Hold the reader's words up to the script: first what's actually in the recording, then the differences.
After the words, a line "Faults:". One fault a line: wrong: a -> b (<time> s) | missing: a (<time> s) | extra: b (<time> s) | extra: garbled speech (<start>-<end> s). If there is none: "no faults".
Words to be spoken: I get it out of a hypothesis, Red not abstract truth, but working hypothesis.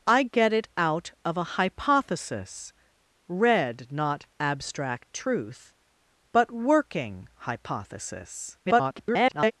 I get it out of a hypothesis, Red not abstract truth, but working hypothesis. [garbled]
Faults:
extra: garbled speech (8.6-9.5 s)